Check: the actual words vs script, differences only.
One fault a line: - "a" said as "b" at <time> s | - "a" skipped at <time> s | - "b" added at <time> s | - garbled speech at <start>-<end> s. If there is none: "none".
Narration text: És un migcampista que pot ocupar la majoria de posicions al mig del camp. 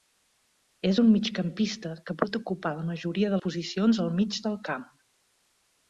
none